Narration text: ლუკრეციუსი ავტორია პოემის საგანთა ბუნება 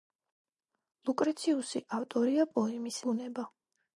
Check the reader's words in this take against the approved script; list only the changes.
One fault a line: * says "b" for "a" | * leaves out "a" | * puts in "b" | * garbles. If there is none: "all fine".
* leaves out "საგანთა"